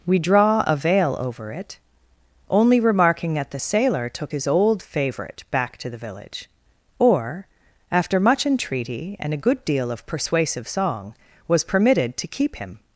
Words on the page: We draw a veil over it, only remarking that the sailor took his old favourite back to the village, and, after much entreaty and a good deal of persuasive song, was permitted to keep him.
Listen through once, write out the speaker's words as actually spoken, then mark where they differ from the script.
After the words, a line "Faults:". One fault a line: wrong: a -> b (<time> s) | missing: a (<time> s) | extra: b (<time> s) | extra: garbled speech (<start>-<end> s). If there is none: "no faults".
We draw a veil over it, only remarking that the sailor took his old favourite back to the village, or, after much entreaty and a good deal of persuasive song, was permitted to keep him.
Faults:
wrong: and -> or (7.0 s)